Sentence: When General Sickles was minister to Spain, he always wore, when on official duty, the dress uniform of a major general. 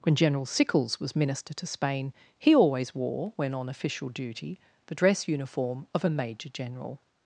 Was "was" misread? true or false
false